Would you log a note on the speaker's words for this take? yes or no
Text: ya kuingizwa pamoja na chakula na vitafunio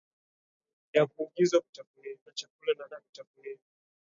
yes